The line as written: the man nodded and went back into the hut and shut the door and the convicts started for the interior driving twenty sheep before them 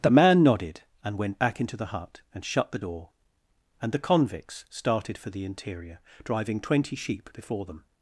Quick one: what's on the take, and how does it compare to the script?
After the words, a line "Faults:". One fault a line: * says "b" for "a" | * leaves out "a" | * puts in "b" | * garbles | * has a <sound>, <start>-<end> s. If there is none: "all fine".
the man nodded and went back into the hut and shut the door and the convicts started for the interior driving twenty sheep before them
Faults:
all fine